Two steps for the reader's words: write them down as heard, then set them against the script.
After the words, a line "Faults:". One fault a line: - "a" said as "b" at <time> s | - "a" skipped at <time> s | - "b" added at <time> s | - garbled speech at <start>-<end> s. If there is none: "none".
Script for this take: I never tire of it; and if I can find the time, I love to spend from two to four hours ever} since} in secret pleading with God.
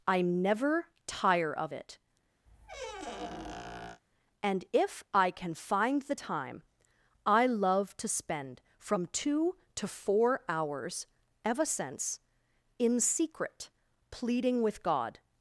I never tire of it; and if I can find the time, I love to spend from two to four hours ever} since} in secret pleading with God.
Faults:
none